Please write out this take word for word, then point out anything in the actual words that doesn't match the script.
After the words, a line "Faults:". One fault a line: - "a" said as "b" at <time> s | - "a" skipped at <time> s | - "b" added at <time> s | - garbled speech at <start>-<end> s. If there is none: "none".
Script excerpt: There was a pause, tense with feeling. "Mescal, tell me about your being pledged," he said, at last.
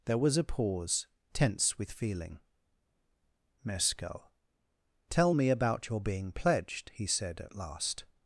There was a pause, tense with feeling. "Mescal, tell me about your being pledged," he said, at last.
Faults:
none